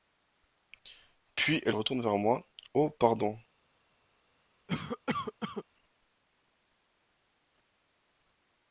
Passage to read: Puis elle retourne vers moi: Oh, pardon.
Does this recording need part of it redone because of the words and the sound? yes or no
yes